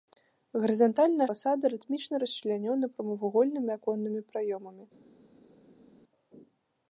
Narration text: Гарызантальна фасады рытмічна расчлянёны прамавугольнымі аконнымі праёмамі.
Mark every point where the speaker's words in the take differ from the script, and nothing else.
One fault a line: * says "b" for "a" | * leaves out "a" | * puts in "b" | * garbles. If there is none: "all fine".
all fine